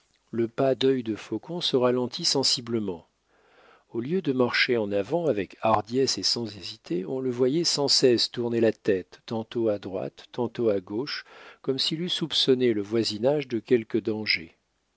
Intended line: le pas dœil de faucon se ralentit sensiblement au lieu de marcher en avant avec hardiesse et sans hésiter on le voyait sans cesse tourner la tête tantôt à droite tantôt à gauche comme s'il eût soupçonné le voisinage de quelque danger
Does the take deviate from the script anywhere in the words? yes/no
no